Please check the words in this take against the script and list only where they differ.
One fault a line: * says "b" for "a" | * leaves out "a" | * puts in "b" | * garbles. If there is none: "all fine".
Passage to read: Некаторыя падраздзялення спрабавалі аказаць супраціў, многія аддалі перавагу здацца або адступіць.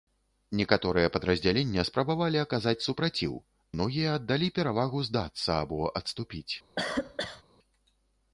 all fine